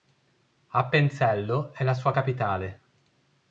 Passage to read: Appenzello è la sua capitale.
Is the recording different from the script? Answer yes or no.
no